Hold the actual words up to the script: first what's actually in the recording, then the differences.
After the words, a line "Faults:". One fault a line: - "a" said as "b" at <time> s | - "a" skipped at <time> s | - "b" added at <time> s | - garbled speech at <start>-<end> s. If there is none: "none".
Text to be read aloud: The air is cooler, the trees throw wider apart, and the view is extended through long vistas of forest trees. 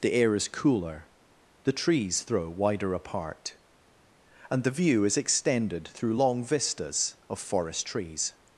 The air is cooler, the trees throw wider apart, and the view is extended through long vistas of forest trees.
Faults:
none